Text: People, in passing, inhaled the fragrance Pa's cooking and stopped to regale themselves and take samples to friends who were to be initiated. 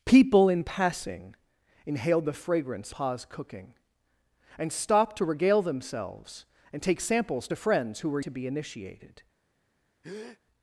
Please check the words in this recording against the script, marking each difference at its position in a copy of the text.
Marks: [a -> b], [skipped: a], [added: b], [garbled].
People, in passing, inhaled the fragrance Pa's cooking and stopped to regale themselves and take samples to friends who were to be initiated.